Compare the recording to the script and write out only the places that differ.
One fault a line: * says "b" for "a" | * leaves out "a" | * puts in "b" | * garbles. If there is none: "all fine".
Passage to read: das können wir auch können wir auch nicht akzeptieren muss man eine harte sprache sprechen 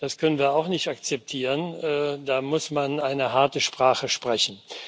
* leaves out "können wir auch"
* puts in "da"